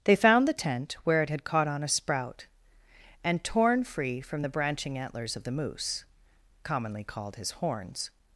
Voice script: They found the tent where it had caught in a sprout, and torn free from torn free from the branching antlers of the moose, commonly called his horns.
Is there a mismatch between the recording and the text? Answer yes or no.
yes